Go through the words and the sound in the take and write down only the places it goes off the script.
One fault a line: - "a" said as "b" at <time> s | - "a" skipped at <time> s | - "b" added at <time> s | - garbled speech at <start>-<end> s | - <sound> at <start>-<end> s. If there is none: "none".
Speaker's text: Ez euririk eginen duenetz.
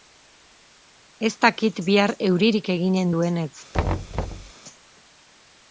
- "dakit bihar" added at 1.4 s
- thud at 3.7-4.5 s